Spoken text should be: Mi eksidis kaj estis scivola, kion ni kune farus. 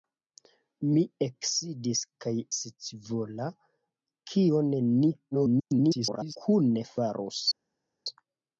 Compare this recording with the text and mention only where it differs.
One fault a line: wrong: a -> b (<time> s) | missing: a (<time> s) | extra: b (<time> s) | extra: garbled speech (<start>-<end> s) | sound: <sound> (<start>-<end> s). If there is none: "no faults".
missing: estis (2.3 s)
extra: garbled speech (5.3-6.4 s)